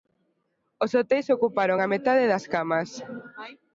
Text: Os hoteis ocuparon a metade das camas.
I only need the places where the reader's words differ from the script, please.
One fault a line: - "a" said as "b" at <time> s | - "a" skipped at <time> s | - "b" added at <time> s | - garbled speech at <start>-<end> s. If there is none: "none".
none